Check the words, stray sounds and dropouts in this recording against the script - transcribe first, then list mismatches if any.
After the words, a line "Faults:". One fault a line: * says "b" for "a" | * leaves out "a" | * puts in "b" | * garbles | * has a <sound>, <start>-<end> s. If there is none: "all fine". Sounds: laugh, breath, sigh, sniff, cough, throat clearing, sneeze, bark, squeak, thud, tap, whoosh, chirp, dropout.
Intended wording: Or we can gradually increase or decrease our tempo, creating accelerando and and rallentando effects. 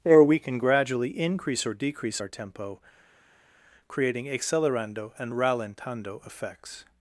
Or we can gradually increase or decrease our tempo, creating accelerando and rallentando effects.
Faults:
* leaves out "and"